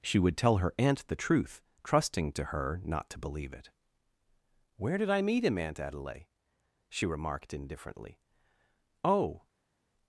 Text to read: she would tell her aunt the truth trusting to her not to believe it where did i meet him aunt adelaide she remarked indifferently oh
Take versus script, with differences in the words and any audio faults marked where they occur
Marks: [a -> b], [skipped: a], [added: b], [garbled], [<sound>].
she would tell her aunt the truth trusting to her not to believe it where did i meet him aunt adelaide she remarked indifferently oh